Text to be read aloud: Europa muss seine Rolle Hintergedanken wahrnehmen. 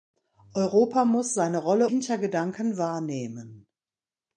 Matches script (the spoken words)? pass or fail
pass